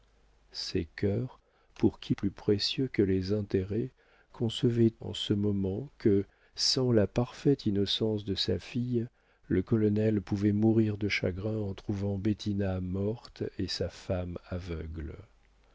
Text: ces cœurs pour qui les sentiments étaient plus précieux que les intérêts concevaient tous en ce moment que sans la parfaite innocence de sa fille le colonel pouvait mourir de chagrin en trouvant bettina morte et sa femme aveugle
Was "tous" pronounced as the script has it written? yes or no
no